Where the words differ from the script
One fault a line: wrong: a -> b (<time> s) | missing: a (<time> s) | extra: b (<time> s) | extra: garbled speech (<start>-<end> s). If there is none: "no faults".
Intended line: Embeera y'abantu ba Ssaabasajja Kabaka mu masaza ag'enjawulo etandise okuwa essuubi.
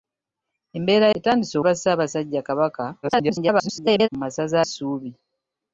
wrong: y'abantu -> etandise (1.2 s)
extra: garbled speech (3.0-4.1 s)
missing: ag'enjawulo etandise okuwa (4.6 s)